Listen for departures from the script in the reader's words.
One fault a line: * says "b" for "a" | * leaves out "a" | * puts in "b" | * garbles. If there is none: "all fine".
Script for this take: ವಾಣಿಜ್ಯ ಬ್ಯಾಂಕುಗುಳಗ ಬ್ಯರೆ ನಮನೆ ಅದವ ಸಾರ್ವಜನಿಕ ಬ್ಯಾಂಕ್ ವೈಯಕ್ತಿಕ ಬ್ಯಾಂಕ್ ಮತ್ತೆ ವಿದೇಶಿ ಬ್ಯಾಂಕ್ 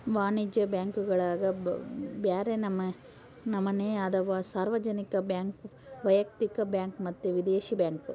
all fine